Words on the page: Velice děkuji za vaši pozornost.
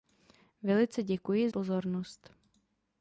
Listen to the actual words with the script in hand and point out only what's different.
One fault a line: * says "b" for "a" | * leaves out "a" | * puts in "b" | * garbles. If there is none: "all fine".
* leaves out "za vaši"